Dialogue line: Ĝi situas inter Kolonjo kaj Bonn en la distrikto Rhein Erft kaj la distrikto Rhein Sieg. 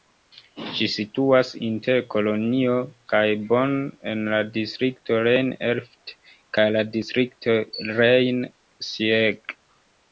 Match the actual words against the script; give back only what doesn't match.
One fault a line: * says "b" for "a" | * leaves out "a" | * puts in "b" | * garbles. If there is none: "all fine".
all fine